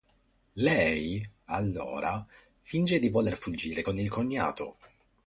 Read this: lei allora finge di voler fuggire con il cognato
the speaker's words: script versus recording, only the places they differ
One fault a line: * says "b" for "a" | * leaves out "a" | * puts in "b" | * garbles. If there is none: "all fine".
all fine